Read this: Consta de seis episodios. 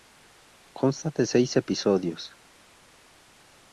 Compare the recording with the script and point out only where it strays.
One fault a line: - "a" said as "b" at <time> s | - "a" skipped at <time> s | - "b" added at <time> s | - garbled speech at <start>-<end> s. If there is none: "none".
none